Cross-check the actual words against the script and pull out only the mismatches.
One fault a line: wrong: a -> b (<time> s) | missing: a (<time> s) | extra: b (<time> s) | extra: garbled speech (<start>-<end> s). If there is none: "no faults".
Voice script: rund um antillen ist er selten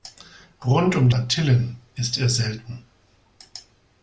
no faults